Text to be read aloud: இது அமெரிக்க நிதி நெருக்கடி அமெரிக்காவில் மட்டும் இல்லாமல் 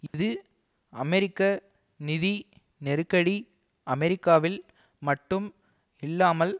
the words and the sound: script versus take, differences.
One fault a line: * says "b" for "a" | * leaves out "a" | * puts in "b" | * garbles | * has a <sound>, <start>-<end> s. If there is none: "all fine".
* has a dropout, 0.1-0.1 s